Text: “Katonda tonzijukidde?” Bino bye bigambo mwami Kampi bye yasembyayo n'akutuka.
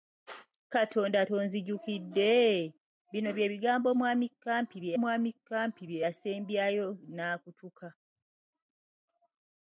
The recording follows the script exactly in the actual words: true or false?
false